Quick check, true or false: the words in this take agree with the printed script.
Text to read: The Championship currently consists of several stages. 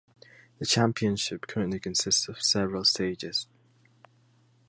true